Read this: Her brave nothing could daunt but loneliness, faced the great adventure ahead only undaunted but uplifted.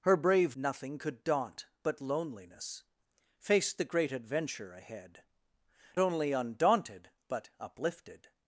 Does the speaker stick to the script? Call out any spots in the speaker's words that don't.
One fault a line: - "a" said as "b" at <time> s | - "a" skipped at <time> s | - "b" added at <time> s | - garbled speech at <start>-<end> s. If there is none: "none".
none